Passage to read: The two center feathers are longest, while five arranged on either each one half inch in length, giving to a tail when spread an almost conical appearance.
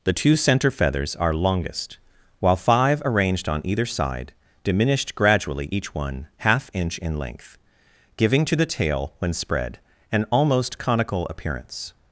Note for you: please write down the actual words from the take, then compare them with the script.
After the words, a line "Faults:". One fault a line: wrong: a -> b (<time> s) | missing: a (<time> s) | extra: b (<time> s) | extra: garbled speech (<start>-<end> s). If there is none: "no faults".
The two center feathers are longest, while five arranged on either side diminished gradually each one half inch in length, giving to the tail when spread an almost conical appearance.
Faults:
extra: side diminished gradually (3.9 s)
wrong: a -> the (8.6 s)